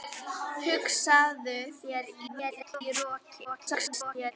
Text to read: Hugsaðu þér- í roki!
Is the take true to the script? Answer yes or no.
no